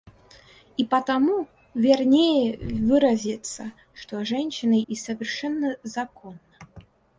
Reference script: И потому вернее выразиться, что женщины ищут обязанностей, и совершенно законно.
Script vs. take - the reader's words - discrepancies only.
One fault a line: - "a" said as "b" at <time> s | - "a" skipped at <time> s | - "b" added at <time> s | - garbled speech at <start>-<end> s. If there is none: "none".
- "ищут обязанностей" skipped at 4.8 s